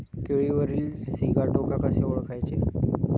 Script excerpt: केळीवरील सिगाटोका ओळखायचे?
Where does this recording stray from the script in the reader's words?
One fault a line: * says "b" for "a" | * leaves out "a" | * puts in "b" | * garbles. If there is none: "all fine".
* puts in "कसे"